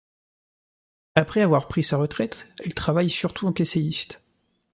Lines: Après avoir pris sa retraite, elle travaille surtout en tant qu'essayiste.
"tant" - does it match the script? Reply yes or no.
no